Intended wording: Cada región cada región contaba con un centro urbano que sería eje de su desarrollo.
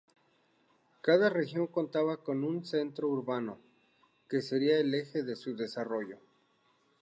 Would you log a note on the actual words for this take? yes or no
yes